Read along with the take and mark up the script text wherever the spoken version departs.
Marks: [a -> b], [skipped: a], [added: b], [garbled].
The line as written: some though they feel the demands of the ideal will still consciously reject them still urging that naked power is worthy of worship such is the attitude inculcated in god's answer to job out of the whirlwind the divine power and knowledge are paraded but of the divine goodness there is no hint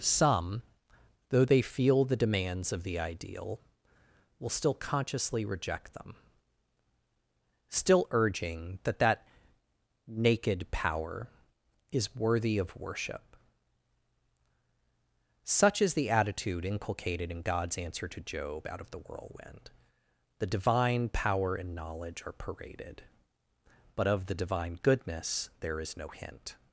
some though they feel the demands of the ideal will still consciously reject them still urging that [added: that] naked power is worthy of worship such is the attitude inculcated in god's answer to job out of the whirlwind the divine power and knowledge are paraded but of the divine goodness there is no hint